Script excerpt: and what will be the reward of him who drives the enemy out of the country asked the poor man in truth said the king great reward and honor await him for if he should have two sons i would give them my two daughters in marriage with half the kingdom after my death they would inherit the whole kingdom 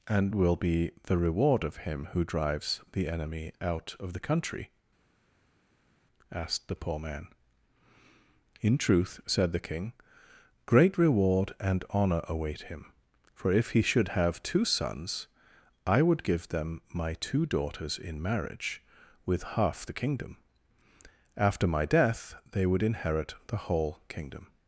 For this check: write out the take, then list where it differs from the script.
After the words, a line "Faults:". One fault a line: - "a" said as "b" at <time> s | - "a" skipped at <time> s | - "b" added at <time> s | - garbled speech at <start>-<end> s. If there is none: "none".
and will be the reward of him who drives the enemy out of the country asked the poor man in truth said the king great reward and honor await him for if he should have two sons i would give them my two daughters in marriage with half the kingdom after my death they would inherit the whole kingdom
Faults:
- "what" skipped at 0.3 s